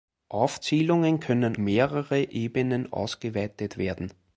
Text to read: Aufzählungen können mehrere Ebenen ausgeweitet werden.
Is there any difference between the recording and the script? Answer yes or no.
no